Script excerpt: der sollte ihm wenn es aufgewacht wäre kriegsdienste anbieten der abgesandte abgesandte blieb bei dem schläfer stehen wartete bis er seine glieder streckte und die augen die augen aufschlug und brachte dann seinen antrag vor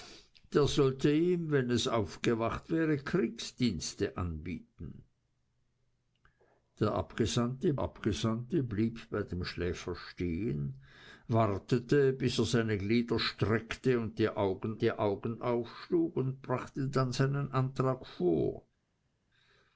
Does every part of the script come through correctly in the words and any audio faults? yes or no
yes